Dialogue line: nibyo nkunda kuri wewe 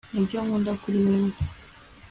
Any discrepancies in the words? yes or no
no